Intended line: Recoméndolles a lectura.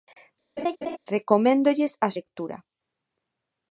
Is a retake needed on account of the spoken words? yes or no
no